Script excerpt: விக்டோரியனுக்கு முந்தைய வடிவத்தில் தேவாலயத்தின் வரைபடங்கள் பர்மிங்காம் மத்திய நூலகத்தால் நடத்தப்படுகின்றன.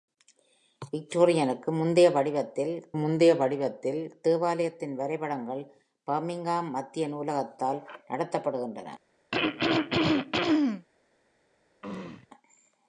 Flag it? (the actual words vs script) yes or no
yes